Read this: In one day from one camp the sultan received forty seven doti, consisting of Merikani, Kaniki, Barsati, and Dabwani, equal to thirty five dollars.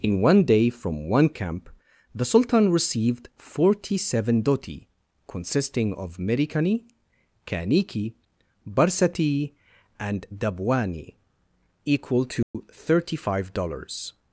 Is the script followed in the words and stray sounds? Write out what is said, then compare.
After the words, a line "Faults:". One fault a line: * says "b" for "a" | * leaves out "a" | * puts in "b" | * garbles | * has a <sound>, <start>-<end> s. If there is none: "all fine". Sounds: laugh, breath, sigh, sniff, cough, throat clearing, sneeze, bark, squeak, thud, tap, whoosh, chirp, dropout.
In one day from one camp the sultan received forty seven doti, consisting of Merikani, Kaniki, Barsati, and Dabwani, equal to thirty five dollars.
Faults:
* has a dropout, 12.4-12.5 s